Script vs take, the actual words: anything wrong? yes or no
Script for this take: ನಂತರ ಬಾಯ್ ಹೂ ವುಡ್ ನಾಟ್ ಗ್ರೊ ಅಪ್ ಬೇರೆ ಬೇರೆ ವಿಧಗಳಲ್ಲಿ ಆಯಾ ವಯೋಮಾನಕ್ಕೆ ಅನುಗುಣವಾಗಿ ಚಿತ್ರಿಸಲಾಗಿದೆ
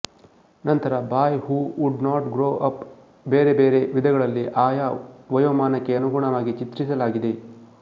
no